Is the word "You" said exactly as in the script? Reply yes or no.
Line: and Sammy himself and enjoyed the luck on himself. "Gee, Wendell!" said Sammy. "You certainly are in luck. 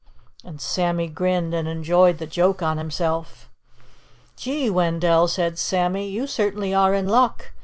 yes